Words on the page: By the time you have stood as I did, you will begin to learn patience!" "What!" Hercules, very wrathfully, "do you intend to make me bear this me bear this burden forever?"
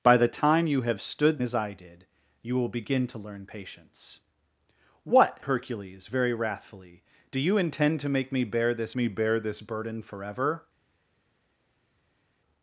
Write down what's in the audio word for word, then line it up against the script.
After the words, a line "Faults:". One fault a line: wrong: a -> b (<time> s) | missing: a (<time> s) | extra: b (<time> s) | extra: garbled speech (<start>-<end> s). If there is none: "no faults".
By the time you have stood as I did, you will begin to learn patience!" "What!" Hercules, very wrathfully, "do you intend to make me bear this me bear this burden forever?"
Faults:
no faults